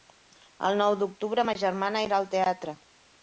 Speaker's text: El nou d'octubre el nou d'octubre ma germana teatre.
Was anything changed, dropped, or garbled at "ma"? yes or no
yes